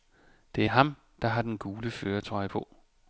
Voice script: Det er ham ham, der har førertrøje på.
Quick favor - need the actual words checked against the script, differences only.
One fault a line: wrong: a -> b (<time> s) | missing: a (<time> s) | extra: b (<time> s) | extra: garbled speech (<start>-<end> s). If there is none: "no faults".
missing: ham (0.9 s)
extra: den gule (1.4 s)